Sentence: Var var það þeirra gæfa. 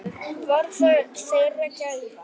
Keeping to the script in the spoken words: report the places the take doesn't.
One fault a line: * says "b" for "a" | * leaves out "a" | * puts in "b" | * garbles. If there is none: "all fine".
* leaves out "var"